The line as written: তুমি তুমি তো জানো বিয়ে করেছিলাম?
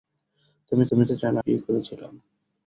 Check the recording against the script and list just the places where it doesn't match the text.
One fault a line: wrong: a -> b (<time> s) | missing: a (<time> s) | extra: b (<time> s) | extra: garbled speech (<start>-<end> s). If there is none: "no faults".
no faults